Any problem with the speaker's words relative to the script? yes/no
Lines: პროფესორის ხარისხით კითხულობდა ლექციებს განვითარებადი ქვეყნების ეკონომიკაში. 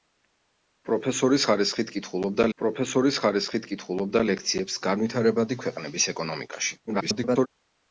yes